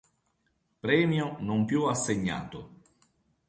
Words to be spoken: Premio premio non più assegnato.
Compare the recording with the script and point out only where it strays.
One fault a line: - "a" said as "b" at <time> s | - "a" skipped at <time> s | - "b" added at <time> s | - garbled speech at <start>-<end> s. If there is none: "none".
- "premio" skipped at 1.4 s